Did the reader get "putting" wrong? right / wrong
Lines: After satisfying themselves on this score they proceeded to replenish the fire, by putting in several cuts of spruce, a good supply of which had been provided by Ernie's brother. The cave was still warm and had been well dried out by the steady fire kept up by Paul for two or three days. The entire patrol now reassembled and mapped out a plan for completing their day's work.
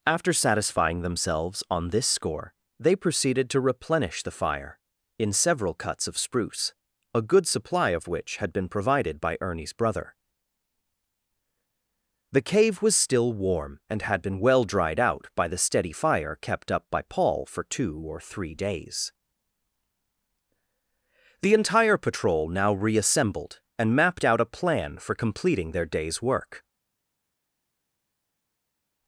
wrong